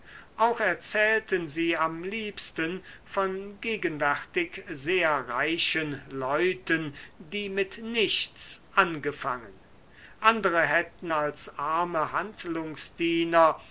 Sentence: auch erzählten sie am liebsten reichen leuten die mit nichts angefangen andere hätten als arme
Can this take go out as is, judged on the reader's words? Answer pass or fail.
fail